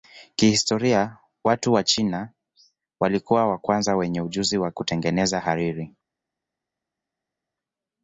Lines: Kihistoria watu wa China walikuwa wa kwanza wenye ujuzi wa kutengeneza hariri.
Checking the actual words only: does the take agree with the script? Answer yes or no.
yes